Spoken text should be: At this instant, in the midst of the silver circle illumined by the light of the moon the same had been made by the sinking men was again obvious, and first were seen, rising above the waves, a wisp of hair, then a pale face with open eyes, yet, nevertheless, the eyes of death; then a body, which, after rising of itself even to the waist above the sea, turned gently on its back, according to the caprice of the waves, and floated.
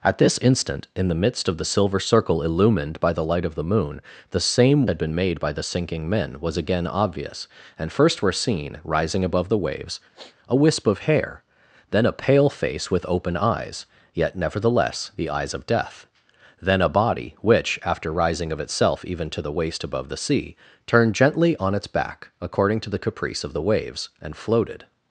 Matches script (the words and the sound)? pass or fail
fail